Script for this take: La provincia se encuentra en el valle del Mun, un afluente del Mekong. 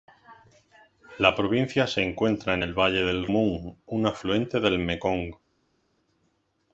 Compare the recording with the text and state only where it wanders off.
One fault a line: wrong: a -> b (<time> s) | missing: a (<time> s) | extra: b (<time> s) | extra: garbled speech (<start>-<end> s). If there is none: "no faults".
no faults